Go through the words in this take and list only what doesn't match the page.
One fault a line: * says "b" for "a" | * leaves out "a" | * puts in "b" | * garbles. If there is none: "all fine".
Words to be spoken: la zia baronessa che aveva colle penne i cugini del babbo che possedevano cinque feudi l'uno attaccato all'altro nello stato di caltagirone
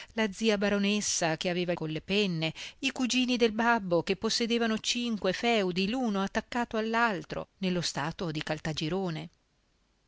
all fine